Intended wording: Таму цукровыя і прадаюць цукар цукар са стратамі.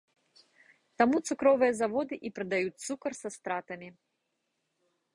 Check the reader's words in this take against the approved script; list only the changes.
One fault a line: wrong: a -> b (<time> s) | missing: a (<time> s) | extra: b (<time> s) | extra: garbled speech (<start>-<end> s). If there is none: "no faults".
extra: заводы (1.8 s)
missing: цукар (3.1 s)